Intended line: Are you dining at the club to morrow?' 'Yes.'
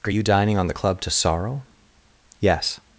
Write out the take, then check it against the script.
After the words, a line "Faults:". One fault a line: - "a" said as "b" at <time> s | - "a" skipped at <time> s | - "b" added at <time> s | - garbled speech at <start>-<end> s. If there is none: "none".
Are you dining on the club to sorrow?' 'Yes.'
Faults:
- "at" said as "on" at 0.6 s
- "morrow" said as "sorrow" at 1.1 s